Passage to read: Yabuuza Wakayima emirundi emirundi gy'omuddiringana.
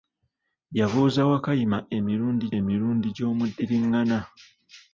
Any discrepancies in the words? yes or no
no